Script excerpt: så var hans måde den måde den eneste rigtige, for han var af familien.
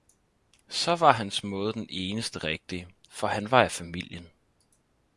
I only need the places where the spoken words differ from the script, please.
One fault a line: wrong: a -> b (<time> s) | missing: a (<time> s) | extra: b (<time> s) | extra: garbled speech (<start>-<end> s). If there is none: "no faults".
missing: måde den (1.9 s)